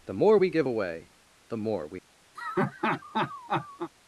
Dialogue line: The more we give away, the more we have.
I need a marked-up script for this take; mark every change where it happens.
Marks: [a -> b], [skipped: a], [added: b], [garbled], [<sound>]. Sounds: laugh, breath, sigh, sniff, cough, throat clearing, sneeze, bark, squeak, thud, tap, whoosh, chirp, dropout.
The more we give away, the more we [skipped: have.] [laugh]